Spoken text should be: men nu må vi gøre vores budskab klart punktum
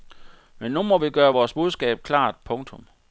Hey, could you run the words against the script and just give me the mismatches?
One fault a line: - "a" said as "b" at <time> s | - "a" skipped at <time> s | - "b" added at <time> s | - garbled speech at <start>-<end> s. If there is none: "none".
none